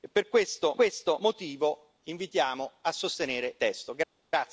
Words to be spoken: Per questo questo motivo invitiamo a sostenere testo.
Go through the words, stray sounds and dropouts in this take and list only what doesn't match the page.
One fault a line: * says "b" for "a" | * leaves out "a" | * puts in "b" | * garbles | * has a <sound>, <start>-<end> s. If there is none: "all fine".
all fine